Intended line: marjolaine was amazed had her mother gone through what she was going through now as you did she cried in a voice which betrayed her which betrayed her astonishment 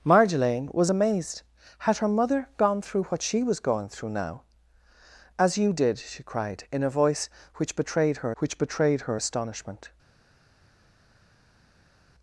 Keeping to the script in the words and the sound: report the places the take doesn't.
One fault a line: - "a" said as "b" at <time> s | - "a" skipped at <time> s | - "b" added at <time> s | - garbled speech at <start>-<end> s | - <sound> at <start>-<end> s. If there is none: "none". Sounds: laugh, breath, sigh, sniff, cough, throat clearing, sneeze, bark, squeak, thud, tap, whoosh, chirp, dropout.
none